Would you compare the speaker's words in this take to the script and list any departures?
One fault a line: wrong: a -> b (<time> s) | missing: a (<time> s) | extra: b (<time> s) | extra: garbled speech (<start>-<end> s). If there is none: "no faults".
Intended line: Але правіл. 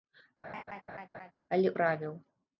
no faults